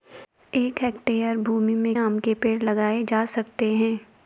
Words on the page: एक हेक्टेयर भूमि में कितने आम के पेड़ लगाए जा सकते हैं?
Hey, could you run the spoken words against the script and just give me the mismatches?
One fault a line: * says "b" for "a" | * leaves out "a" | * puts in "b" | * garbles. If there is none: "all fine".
* leaves out "कितने"